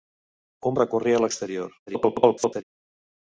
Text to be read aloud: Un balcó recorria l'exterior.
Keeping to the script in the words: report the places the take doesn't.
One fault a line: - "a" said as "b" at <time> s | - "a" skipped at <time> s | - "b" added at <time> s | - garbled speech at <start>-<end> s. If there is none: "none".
- "balcó" skipped at 0.8 s
- garbled speech at 1.9-2.6 s